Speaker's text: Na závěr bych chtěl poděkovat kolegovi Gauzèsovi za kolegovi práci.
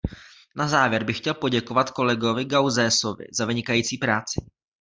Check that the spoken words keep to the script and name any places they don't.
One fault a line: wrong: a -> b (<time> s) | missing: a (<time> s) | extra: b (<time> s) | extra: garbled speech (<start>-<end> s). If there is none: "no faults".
wrong: kolegovi -> vynikající (3.5 s)